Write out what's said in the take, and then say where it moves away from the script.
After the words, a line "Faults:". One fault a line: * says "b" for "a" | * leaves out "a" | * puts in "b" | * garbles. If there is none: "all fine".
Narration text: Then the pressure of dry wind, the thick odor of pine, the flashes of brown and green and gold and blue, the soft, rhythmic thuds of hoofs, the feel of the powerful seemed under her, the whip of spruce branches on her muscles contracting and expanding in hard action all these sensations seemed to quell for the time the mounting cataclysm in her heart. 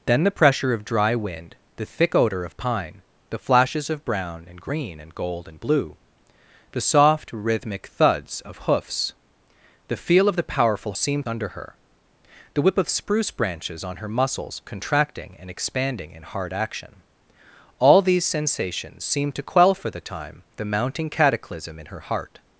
Then the pressure of dry wind, the thick odor of pine, the flashes of brown and green and gold and blue, the soft, rhythmic thuds of hoofs, the feel of the powerful seemed under her, the whip of spruce branches on her muscles contracting and expanding in hard action all these sensations seemed to quell for the time the mounting cataclysm in her heart.
Faults:
all fine